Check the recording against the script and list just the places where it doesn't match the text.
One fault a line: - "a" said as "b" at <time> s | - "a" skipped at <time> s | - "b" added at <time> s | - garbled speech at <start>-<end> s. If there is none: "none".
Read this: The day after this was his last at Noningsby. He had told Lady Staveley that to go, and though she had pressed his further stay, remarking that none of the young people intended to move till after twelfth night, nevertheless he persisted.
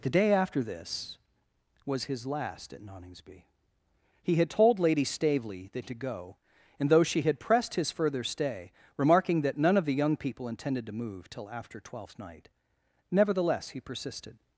none